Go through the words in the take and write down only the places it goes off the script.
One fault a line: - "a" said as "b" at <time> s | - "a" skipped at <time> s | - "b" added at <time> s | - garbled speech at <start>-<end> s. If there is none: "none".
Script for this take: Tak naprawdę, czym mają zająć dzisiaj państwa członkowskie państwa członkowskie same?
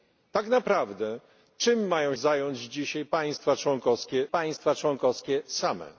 none